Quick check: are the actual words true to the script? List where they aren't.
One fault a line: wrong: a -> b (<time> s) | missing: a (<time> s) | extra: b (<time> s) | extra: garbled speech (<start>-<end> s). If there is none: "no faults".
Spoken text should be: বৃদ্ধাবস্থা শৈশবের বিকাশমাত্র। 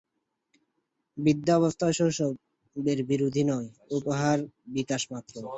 extra: বিরোধী নয় উহার (3.1 s)